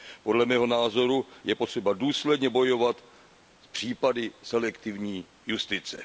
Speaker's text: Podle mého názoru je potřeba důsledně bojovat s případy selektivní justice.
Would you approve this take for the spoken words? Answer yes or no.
yes